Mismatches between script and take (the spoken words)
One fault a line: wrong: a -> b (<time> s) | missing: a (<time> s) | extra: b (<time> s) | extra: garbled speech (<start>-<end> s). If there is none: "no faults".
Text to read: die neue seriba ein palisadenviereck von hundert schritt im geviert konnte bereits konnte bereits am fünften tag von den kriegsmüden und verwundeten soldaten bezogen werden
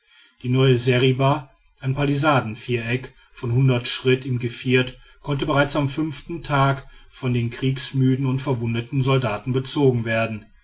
missing: konnte bereits (5.7 s)